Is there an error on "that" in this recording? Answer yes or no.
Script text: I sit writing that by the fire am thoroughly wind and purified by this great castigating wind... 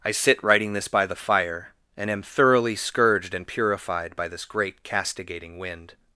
yes